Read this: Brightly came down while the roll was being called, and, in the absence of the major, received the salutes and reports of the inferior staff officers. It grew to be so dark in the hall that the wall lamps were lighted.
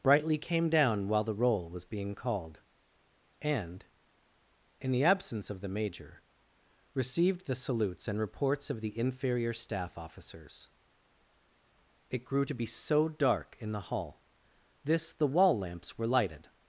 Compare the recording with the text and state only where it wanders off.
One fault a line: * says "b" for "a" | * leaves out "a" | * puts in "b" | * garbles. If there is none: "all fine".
* says "this" for "that"